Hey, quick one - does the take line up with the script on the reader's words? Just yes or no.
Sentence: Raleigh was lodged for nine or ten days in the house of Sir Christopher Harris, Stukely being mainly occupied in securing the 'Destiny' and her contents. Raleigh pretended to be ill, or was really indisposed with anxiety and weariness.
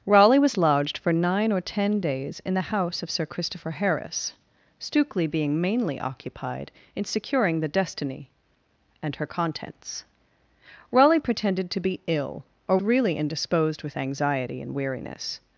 no